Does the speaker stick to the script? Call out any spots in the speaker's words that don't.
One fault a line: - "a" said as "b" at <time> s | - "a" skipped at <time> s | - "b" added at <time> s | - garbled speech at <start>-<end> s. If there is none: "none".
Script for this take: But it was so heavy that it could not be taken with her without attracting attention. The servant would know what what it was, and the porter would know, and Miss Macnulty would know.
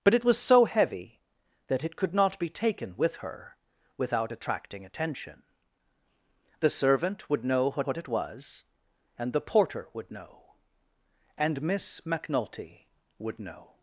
none